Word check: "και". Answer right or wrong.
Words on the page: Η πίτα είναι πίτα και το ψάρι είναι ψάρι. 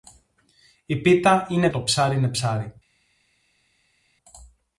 wrong